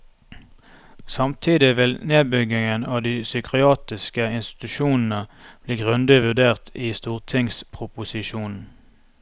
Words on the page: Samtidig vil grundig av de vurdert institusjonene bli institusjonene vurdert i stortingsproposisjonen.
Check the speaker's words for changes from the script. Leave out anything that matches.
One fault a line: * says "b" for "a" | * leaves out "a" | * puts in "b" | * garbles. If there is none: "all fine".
* says "nedbyggingen" for "grundig"
* says "psykiatriske" for "vurdert"
* says "grundig" for "institusjonene"